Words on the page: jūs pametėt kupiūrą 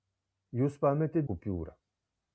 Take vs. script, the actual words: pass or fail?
pass